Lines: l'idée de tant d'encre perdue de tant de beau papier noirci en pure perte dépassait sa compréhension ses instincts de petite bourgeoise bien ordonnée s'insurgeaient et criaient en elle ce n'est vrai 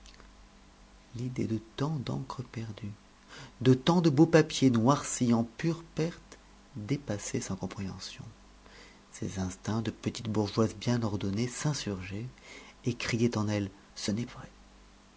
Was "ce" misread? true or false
false